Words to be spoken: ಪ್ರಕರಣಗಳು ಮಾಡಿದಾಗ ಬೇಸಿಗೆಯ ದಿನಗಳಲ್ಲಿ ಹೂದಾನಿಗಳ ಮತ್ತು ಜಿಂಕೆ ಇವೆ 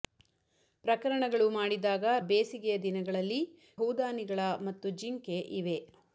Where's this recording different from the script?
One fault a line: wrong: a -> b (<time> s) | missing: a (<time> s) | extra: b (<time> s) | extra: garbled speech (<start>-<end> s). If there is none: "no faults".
no faults